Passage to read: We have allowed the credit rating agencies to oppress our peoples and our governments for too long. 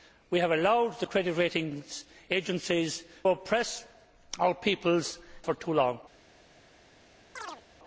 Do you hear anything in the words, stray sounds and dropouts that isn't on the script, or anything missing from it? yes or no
yes